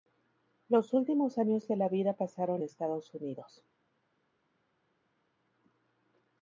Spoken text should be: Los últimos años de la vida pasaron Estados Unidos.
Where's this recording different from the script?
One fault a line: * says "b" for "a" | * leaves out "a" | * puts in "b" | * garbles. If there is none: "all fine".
all fine